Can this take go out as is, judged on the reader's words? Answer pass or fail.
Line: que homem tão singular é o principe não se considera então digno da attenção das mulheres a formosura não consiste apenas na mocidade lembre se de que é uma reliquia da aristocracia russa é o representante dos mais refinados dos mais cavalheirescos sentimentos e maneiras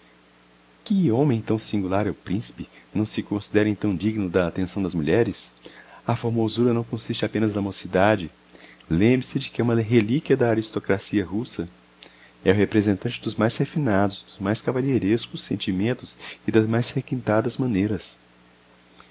fail